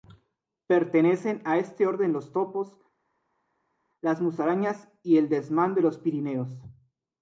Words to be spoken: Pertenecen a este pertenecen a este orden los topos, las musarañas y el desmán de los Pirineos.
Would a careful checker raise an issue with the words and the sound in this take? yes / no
yes